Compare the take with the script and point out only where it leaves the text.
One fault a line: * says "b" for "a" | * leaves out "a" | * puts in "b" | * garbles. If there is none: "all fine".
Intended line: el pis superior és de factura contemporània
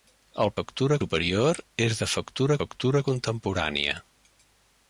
* says "factura" for "pis"
* puts in "factura"